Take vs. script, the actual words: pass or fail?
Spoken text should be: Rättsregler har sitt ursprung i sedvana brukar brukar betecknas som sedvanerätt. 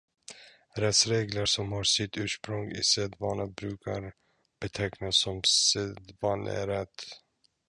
fail